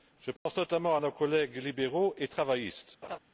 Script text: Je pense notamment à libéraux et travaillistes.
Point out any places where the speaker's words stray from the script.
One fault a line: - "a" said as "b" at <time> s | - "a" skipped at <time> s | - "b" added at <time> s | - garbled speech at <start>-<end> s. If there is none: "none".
- "nos collègues" added at 1.0 s